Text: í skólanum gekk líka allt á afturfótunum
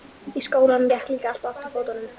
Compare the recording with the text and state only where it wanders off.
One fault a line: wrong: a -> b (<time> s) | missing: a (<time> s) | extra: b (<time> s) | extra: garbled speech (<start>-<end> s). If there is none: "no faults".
no faults